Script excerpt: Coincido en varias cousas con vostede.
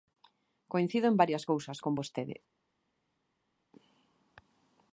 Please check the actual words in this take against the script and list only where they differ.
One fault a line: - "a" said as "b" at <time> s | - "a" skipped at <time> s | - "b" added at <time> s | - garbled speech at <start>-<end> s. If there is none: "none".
none